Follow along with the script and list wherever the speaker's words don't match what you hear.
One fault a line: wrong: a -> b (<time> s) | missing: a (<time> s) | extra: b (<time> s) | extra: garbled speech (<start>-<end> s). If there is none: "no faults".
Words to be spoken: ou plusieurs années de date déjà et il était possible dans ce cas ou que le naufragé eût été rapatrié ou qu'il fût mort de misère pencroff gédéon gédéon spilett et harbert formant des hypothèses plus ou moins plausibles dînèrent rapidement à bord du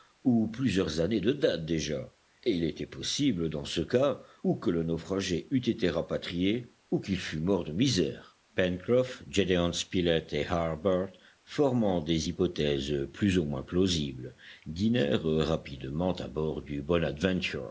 missing: gédéon (9.7 s)